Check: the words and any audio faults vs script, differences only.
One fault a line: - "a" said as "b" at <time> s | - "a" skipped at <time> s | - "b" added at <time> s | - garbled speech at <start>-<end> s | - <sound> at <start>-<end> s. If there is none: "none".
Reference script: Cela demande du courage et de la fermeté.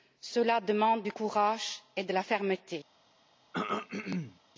- throat clearing at 3.5-4.4 s